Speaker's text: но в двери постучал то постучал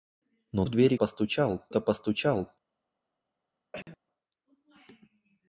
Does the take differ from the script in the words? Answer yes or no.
no